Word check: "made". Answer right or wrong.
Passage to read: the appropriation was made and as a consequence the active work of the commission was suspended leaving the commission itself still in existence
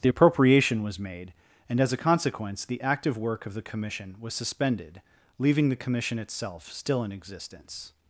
right